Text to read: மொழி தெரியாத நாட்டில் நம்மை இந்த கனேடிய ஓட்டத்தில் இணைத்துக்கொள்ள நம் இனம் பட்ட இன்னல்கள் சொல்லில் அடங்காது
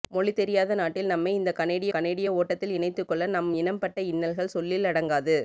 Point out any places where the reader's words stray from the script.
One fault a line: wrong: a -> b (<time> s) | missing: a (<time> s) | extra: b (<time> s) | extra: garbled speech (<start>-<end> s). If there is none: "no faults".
extra: கனேடிய (1.9 s)